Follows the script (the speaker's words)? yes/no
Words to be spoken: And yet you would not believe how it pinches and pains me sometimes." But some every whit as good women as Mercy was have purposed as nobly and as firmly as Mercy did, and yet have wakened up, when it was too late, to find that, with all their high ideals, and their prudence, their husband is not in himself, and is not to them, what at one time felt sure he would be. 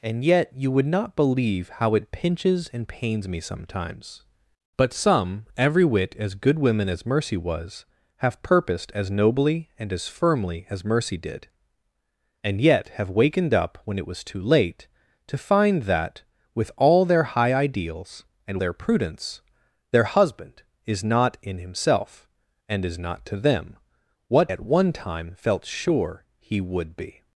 yes